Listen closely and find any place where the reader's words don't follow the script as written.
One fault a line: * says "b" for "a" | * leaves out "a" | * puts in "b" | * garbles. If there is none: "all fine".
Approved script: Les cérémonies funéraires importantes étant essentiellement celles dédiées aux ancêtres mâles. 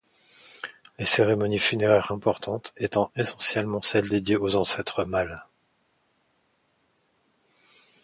all fine